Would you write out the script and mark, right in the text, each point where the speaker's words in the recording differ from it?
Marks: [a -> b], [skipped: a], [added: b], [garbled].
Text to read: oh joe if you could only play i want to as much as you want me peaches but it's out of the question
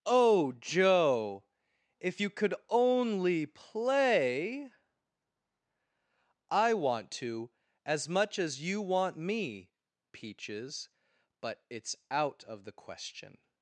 oh joe if you could only play i want to as much as you want me peaches but it's out of the question